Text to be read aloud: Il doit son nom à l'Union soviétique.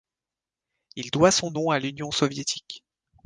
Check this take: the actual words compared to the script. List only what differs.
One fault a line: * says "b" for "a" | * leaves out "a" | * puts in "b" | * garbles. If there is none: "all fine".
all fine